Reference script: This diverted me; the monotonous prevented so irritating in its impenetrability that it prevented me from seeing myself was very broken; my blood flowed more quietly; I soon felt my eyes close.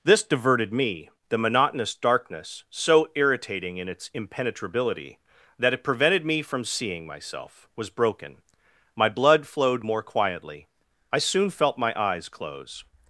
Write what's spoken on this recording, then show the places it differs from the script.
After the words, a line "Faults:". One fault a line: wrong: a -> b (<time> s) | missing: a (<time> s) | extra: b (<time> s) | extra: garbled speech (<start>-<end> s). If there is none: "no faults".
This diverted me; the monotonous darkness so irritating in its impenetrability that it prevented me from seeing myself was broken; my blood flowed more quietly; I soon felt my eyes close.
Faults:
wrong: prevented -> darkness (1.9 s)
missing: very (7.9 s)